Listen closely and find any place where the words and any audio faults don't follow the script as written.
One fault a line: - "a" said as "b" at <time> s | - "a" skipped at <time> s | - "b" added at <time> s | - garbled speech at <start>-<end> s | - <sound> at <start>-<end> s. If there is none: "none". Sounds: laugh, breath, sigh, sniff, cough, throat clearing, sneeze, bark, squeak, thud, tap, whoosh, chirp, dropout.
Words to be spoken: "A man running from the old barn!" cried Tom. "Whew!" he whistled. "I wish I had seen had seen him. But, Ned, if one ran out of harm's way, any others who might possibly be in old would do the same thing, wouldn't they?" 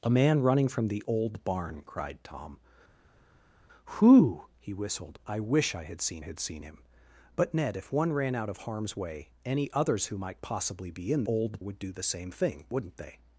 none